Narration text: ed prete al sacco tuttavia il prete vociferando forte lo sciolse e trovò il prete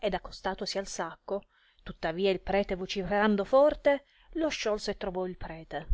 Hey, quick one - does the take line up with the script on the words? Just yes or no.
no